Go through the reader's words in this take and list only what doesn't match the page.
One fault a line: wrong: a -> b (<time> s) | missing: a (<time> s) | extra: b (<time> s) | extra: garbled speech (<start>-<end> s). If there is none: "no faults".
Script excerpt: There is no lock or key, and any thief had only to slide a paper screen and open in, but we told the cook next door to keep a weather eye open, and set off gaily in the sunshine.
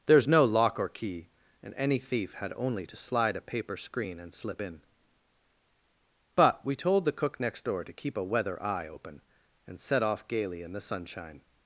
wrong: open -> slip (4.3 s)